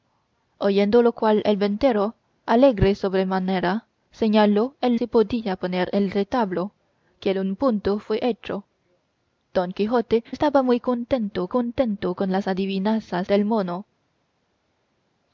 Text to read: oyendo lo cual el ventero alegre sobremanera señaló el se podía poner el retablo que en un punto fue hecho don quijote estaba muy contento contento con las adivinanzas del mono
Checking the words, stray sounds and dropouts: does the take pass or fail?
pass